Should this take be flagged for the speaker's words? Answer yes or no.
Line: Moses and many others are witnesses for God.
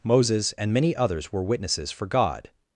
yes